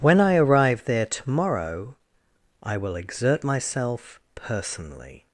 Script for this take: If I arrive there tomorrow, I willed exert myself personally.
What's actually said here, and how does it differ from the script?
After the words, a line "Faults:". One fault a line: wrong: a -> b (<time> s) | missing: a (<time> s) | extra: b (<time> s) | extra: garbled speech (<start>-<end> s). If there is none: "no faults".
When I arrive there tomorrow, I will exert myself personally.
Faults:
wrong: If -> When (0.0 s)
wrong: willed -> will (2.8 s)